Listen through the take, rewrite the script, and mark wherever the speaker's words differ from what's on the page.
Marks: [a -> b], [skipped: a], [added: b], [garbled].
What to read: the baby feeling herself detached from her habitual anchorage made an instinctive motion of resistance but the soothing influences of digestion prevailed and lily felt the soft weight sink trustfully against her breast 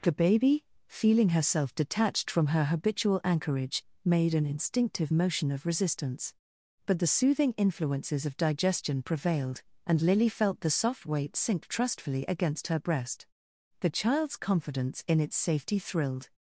the baby feeling herself detached from her habitual anchorage made an instinctive motion of resistance but the soothing influences of digestion prevailed and lily felt the soft weight sink trustfully against her breast [added: the child's confidence in its safety thrilled]